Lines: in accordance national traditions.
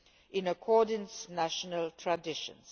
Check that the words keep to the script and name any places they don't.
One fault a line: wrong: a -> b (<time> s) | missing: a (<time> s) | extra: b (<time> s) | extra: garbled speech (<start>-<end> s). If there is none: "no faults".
no faults